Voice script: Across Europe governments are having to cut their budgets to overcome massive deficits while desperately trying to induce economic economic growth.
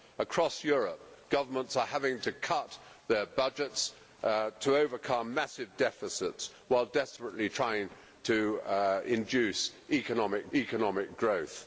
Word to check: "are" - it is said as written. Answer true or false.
true